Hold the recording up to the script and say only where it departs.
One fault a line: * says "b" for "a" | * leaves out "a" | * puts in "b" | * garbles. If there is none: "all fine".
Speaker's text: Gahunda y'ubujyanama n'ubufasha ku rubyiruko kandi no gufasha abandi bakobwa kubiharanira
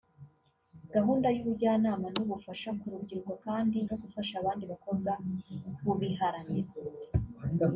all fine